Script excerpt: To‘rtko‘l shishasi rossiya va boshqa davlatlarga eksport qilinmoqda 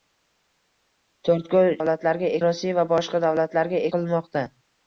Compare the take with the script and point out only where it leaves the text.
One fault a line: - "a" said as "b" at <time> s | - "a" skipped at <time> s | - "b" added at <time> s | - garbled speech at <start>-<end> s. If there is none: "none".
- "shishasi" said as "davlatlarga" at 1.8 s
- "eksport" skipped at 3.9 s